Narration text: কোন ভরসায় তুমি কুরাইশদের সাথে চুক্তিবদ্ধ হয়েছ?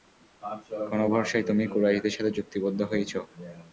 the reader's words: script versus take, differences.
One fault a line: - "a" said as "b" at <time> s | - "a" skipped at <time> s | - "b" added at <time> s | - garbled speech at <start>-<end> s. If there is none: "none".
none